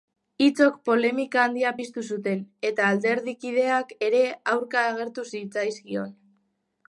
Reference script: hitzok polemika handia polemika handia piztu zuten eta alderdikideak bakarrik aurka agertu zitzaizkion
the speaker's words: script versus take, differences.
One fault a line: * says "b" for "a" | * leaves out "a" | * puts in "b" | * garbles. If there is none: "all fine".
* leaves out "polemika handia"
* says "ere" for "bakarrik"